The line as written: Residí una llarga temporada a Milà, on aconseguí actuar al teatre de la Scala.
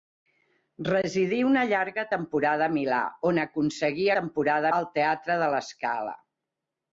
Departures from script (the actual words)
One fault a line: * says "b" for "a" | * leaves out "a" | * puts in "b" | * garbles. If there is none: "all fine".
* says "temporada" for "actuar"